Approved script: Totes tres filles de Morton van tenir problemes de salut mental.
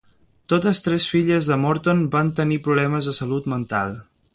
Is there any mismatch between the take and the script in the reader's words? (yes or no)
no